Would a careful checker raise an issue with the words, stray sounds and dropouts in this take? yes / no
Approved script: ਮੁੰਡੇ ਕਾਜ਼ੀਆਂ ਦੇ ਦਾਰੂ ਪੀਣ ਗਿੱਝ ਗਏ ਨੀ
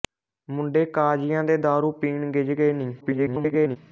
yes